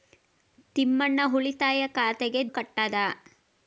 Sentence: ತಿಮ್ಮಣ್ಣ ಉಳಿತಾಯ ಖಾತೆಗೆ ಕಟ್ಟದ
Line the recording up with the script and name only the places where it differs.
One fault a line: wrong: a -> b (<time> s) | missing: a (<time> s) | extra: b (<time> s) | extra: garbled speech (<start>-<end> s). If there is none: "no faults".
no faults